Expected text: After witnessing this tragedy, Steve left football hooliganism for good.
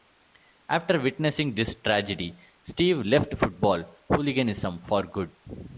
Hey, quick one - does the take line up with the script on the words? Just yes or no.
yes